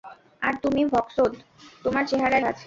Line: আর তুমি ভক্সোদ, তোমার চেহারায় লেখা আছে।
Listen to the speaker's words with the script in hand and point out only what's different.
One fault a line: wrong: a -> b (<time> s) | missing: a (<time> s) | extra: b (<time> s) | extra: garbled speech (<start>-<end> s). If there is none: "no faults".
missing: লেখা (2.5 s)